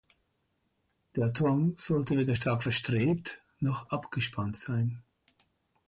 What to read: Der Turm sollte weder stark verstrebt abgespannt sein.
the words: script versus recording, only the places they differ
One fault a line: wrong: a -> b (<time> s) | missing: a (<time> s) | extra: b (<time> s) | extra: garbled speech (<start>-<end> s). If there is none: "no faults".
extra: noch (3.6 s)